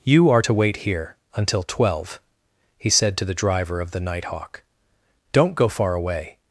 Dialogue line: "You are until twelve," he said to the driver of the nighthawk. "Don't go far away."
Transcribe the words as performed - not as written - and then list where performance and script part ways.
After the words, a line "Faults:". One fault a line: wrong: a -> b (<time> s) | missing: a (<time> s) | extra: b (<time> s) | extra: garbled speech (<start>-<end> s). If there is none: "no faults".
"You are to wait here until twelve," he said to the driver of the nighthawk. "Don't go far away."
Faults:
extra: to wait here (0.4 s)